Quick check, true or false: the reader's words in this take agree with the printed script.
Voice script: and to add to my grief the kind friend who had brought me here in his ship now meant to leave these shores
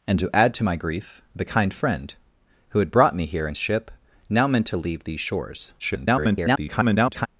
false